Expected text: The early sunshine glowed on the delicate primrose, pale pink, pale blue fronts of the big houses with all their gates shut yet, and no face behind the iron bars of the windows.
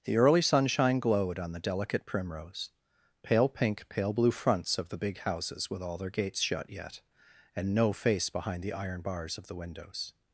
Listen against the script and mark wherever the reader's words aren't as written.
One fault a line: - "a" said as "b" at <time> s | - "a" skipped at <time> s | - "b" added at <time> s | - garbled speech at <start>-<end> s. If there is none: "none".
none